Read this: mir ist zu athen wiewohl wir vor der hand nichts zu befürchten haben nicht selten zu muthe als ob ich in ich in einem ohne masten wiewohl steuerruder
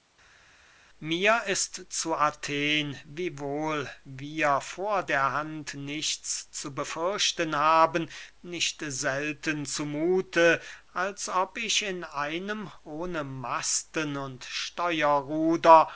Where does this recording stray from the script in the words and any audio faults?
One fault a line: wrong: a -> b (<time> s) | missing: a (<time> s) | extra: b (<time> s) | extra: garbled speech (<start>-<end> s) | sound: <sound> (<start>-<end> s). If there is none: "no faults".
missing: ich in (12.1 s)
wrong: wiewohl -> und (14.2 s)